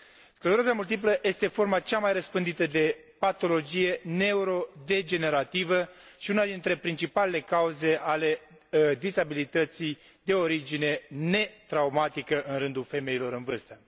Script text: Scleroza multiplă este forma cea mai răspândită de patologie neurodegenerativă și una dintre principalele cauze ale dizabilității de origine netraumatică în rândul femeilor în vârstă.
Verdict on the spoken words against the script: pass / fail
pass